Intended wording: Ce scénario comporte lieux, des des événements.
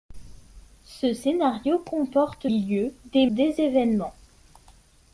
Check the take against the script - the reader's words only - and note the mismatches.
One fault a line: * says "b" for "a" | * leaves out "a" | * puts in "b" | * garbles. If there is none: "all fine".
all fine